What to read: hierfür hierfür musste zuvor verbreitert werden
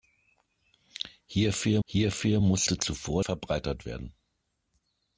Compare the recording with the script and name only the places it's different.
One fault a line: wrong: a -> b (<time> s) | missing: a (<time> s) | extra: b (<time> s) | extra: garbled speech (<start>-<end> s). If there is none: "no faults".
no faults